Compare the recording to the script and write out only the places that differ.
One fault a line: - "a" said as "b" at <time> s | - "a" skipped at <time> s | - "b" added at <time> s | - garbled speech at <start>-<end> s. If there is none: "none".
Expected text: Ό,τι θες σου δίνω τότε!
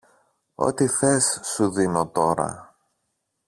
- "τότε" said as "τώρα" at 2.1 s